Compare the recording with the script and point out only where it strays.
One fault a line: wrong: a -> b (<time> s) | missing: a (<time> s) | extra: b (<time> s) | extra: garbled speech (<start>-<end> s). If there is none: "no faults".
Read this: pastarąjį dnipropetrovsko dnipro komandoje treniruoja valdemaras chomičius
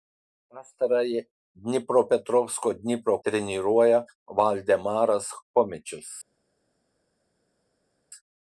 missing: komandoje (3.2 s)